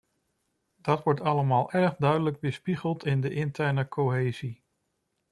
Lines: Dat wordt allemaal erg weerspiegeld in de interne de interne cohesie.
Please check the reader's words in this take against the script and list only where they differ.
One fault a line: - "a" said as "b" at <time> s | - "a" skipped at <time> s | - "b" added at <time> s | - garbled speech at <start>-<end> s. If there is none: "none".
- "duidelijk" added at 2.0 s
- "de interne" skipped at 3.9 s